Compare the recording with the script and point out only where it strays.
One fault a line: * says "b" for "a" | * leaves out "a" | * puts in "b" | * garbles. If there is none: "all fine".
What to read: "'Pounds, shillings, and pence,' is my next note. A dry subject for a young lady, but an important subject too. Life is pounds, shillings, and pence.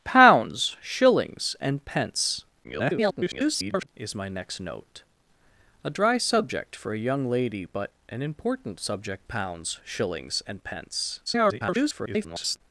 * garbles
* leaves out "too Life is"
* garbles